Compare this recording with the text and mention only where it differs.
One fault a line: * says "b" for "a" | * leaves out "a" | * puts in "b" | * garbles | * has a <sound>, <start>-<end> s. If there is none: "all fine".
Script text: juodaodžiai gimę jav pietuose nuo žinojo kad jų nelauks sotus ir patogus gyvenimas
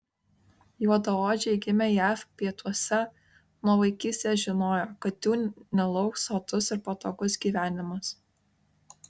* puts in "vaikystės"